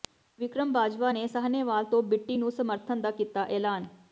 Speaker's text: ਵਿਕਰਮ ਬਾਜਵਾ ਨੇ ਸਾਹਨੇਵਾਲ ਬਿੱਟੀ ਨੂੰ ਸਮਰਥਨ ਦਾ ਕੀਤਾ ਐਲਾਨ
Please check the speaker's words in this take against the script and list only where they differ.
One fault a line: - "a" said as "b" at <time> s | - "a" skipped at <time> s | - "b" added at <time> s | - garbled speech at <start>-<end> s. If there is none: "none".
- "ਤੋਂ" added at 1.8 s